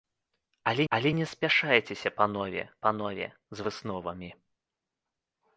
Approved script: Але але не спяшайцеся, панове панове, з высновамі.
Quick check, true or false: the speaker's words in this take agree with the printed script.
true